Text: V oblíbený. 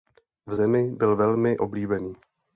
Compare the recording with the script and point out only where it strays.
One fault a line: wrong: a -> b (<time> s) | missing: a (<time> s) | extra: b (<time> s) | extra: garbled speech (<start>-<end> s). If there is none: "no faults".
extra: zemi byl velmi (0.5 s)